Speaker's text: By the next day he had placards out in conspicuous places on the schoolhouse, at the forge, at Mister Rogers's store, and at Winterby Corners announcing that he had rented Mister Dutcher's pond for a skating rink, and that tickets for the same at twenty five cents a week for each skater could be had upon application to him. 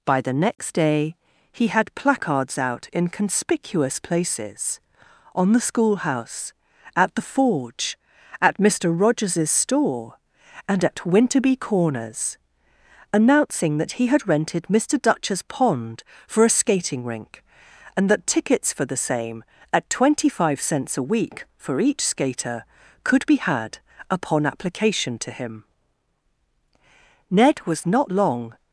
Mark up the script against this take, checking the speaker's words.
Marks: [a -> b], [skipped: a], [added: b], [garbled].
By the next day he had placards out in conspicuous places on the schoolhouse, at the forge, at Mister Rogers's store, and at Winterby Corners announcing that he had rented Mister Dutcher's pond for a skating rink, and that tickets for the same at twenty five cents a week for each skater could be had upon application to him. [added: Ned was not long]